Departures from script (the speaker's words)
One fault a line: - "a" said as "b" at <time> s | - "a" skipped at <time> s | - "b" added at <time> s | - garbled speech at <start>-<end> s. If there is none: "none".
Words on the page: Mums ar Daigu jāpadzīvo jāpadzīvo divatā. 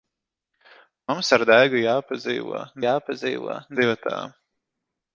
none